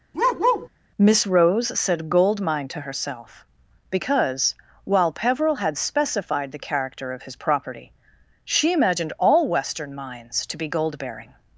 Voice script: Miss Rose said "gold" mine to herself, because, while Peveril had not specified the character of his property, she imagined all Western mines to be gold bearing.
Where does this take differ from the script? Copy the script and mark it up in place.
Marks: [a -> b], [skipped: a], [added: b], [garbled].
Miss Rose said "gold" mine to herself, because, while Peveril had [skipped: not] specified the character of his property, she imagined all Western mines to be gold bearing.